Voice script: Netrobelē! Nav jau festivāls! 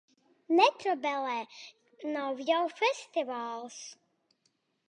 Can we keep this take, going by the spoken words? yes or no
yes